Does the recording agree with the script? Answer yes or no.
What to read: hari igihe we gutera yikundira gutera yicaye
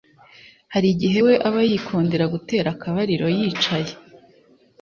no